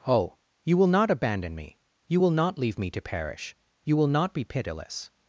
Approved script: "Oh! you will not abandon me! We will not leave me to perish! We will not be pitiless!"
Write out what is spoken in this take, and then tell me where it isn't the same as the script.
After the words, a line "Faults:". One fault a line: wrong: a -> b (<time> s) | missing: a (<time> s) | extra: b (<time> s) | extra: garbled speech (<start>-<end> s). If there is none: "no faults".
"Oh! you will not abandon me! You will not leave me to perish! You will not be pitiless!"
Faults:
wrong: We -> You (2.1 s)
wrong: We -> You (3.8 s)